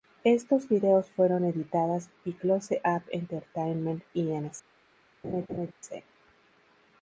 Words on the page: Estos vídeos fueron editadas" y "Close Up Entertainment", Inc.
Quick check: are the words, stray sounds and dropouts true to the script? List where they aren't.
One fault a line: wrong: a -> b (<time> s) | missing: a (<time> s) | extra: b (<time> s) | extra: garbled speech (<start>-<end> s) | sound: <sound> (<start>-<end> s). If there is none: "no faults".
sound: laugh (5.2-5.7 s)